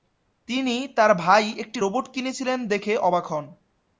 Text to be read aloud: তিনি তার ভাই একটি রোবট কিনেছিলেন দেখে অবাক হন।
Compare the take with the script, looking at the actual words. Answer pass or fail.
pass